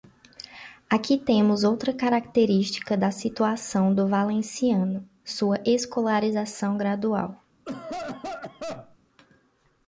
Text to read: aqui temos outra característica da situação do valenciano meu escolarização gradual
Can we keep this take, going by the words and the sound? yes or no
no